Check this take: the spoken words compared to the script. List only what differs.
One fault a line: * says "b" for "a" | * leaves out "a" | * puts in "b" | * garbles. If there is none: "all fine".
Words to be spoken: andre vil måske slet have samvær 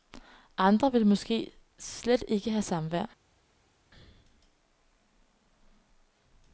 * puts in "ikke"